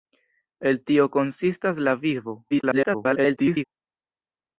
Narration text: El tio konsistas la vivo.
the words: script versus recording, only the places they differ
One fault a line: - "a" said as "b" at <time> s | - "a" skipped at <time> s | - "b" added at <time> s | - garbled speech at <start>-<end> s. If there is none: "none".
- garbled speech at 2.5-3.6 s